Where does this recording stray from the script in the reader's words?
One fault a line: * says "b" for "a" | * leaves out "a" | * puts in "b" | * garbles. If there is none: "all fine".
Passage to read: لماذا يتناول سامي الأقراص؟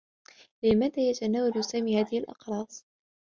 * puts in "هذه"